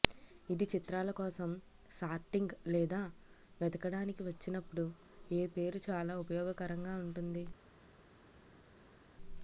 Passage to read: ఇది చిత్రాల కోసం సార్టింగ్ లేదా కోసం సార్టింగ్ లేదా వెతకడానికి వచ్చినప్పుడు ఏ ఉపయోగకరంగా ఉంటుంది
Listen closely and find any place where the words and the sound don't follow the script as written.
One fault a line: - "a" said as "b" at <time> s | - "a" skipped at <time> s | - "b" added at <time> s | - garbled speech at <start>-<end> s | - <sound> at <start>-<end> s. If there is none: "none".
- "కోసం సార్టింగ్ లేదా" skipped at 3.0 s
- "పేరు చాలా" added at 5.6 s